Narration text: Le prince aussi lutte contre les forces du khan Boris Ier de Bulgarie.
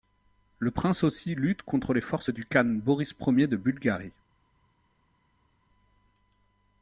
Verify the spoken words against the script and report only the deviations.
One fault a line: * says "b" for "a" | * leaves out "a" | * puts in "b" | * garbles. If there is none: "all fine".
all fine